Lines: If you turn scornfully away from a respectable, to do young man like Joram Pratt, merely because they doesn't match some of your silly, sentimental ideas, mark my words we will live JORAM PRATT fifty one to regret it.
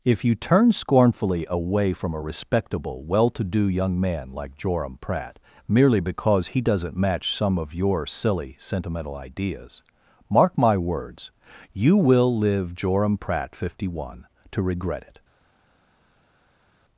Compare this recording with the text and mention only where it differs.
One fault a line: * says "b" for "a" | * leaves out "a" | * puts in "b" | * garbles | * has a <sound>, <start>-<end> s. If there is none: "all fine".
* puts in "well"
* says "he" for "they"
* says "you" for "we"